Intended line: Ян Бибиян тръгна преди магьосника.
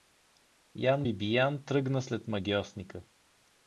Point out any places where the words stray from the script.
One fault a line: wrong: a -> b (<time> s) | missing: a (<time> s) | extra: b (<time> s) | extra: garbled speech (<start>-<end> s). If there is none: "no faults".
wrong: преди -> след (2.0 s)